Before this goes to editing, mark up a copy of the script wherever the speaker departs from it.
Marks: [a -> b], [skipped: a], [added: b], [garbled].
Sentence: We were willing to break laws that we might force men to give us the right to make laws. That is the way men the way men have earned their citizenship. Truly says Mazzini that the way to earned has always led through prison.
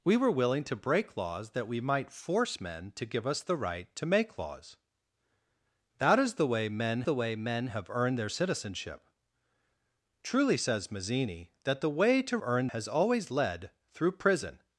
We were willing to break laws that we might force men to give us the right to make laws. That is the way men the way men have earned their citizenship. Truly says Mazzini that the way to earned has always led through prison.